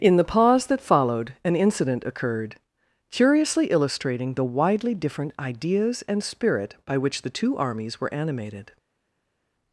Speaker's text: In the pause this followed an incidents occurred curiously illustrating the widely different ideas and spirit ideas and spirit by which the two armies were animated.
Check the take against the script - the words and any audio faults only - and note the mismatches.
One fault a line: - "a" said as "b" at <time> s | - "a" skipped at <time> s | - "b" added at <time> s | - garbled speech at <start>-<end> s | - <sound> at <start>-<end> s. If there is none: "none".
- "this" said as "that" at 0.7 s
- "incidents" said as "incident" at 1.6 s
- "ideas and spirit" skipped at 6.7 s